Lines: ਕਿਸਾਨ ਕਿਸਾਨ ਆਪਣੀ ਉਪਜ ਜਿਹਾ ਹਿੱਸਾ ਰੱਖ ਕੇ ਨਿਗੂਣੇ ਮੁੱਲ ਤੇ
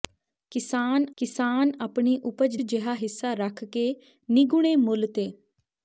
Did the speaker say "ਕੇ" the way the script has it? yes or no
yes